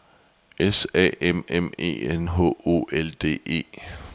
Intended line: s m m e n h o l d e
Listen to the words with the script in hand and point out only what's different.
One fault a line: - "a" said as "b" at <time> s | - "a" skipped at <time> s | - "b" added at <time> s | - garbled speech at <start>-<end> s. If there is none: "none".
- "a" added at 0.9 s